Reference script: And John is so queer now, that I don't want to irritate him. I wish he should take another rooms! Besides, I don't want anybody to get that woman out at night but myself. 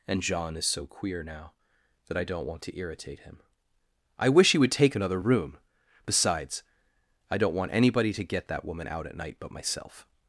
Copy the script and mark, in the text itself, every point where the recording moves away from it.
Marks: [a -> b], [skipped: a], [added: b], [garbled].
And John is so queer now, that I don't want to irritate him. I wish he [should -> would] take another [rooms! -> room] Besides, I don't want anybody to get that woman out at night but myself.